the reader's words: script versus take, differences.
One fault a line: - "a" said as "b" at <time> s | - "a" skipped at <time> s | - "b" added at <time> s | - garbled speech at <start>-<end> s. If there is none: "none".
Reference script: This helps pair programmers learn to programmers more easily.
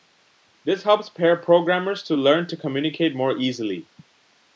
- "to" added at 2.0 s
- "programmers" said as "communicate" at 2.6 s